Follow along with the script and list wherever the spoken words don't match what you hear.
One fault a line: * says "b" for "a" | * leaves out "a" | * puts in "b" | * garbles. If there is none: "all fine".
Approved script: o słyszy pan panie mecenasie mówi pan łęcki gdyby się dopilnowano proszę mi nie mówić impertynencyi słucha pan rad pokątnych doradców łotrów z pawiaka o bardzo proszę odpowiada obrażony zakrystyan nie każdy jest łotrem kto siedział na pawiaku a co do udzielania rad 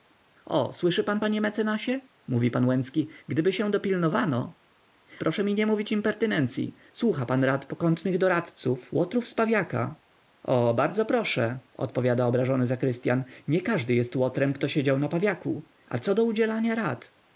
all fine